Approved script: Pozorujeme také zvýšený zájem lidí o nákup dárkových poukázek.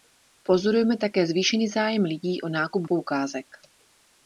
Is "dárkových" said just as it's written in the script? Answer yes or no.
no